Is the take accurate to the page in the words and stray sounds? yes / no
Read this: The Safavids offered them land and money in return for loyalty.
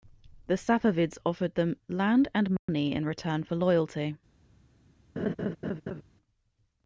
no